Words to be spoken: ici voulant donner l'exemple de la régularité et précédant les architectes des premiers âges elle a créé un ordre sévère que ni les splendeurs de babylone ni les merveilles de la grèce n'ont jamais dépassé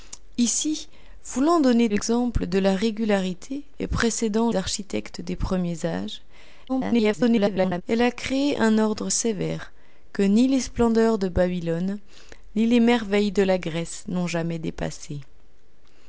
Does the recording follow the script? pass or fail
fail